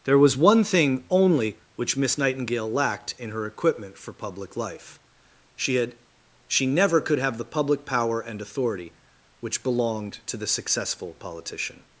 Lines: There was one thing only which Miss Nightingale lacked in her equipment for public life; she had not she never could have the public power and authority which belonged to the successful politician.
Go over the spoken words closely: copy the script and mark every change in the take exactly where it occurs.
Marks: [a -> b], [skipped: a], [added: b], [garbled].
There was one thing only which Miss Nightingale lacked in her equipment for public life; she had [skipped: not] she never could have the public power and authority which belonged to the successful politician.